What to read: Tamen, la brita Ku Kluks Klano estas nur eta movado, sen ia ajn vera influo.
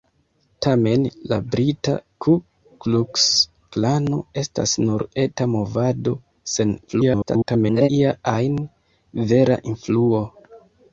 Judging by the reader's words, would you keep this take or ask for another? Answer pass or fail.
fail